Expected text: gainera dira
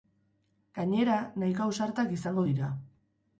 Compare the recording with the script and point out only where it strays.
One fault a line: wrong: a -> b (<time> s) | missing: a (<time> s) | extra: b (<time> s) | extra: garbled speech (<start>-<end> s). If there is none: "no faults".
extra: nahiko ausartak izango (1.4 s)